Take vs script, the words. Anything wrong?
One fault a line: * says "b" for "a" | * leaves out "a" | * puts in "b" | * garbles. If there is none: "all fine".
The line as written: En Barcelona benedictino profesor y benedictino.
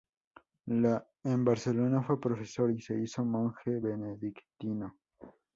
* says "fue" for "benedictino"
* puts in "se hizo monje"